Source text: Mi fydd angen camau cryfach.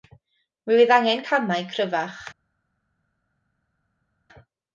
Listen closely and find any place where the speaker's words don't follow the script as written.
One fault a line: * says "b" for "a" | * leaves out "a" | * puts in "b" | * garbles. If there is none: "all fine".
all fine